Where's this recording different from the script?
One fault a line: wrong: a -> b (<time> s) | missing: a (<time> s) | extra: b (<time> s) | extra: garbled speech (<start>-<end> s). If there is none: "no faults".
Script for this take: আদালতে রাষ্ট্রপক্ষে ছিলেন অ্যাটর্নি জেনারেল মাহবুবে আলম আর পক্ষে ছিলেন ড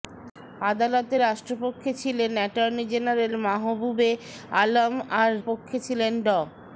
no faults